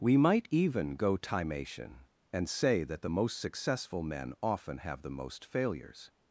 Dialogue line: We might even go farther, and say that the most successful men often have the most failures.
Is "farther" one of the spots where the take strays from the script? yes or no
yes